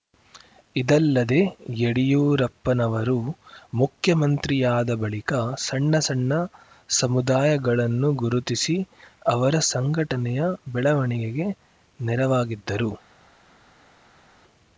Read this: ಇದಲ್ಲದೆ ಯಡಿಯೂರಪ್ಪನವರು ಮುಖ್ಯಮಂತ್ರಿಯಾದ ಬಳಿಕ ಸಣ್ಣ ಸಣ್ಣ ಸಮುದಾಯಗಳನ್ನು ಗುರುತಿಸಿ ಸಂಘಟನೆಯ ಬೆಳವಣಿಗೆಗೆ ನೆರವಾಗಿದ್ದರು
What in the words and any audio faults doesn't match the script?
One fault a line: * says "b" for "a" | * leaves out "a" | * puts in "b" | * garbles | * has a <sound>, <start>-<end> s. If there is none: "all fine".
* puts in "ಅವರ"